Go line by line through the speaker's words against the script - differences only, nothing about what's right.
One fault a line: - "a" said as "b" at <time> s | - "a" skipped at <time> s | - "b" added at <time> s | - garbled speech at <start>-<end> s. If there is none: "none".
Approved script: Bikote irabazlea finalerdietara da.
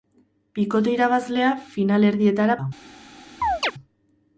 none